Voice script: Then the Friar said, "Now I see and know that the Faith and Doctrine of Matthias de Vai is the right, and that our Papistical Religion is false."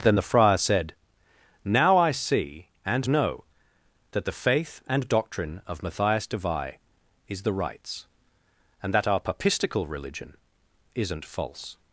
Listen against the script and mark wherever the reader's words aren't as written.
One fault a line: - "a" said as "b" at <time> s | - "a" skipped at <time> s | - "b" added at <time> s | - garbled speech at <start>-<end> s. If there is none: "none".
- "right" said as "rights" at 7.5 s
- "is" said as "isn't" at 10.9 s